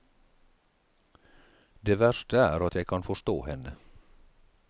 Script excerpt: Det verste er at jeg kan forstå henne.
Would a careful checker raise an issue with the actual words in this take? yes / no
no